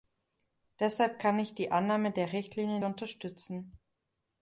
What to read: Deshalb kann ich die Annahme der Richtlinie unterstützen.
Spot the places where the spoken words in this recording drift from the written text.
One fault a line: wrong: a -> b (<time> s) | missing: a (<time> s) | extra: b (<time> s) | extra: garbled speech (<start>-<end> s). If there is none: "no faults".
no faults